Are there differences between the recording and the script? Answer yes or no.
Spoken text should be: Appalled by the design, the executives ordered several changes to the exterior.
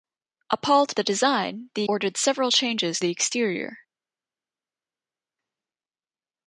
yes